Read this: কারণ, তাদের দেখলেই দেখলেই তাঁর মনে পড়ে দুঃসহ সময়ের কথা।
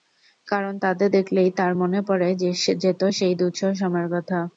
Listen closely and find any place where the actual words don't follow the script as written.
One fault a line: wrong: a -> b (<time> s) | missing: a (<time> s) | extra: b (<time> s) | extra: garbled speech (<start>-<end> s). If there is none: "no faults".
missing: দেখলেই (1.5 s)
extra: যেত সেই (2.8 s)